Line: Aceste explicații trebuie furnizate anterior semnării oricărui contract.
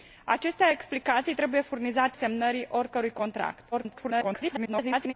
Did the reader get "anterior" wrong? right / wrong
wrong